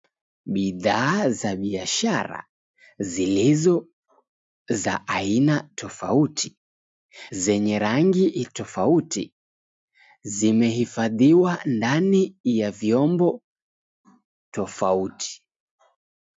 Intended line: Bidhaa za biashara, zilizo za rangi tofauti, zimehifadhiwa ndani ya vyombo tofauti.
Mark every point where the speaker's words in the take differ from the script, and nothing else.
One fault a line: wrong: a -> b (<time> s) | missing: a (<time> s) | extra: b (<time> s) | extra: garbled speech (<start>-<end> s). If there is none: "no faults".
extra: aina tofauti zenye (5.1 s)